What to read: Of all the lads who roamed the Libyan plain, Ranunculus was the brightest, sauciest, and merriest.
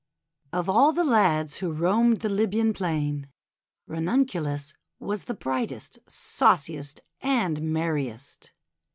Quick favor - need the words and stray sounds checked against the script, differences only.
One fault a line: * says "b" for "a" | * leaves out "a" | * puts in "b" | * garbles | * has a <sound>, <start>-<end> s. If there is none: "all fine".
all fine